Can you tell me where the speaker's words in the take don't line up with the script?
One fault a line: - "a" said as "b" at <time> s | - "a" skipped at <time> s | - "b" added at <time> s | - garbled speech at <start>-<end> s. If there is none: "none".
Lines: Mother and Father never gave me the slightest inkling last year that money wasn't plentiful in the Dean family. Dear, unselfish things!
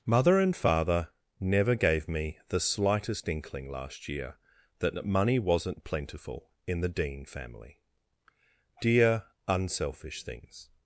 none